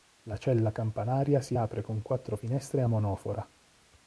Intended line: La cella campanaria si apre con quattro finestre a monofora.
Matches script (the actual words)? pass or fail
pass